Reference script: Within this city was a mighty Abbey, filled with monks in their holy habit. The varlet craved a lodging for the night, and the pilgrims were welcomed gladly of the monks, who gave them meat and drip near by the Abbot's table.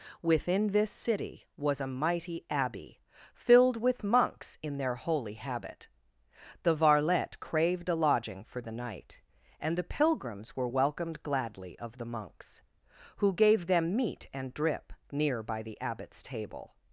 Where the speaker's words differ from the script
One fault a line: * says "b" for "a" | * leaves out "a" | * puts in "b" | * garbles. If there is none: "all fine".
all fine